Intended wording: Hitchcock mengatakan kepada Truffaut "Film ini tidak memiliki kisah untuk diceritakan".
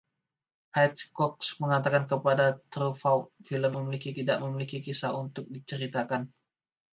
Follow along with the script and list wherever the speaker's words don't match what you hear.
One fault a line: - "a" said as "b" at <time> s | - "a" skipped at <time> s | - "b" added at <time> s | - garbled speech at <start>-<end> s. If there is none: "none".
- "ini" said as "memiliki" at 3.8 s